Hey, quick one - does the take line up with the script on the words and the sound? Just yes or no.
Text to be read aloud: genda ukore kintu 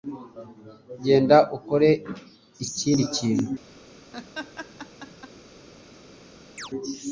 no